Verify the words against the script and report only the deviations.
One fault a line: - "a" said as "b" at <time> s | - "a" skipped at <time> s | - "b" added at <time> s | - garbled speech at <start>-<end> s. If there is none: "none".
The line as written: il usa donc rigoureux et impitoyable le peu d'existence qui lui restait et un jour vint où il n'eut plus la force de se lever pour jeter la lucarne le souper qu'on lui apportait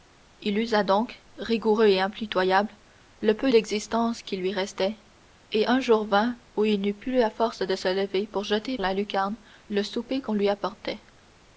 none